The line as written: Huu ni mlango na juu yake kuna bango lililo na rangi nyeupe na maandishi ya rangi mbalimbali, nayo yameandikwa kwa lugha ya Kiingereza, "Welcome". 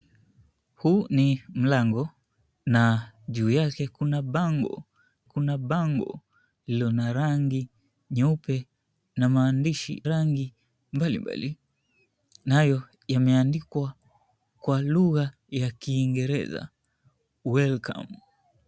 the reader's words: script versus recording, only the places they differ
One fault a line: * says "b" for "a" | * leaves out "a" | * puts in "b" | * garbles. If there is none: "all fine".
* puts in "kuna bango"
* leaves out "ya"